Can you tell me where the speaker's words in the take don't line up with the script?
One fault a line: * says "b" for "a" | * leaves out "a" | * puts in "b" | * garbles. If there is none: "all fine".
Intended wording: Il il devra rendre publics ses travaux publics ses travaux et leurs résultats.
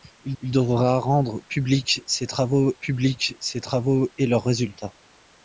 all fine